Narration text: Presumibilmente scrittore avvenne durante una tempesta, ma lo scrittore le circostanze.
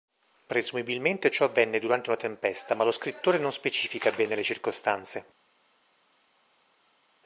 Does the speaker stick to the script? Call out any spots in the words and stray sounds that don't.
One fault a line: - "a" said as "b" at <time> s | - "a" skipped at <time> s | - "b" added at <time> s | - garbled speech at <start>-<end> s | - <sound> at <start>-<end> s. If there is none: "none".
- "scrittore" said as "ciò" at 1.3 s
- "non specifica bene" added at 3.4 s